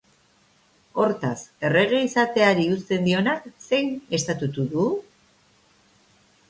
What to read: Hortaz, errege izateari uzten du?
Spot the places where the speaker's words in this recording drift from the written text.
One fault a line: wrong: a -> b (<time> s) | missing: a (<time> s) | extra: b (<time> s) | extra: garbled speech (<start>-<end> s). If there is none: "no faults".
extra: dionak zein estatutu (3.1 s)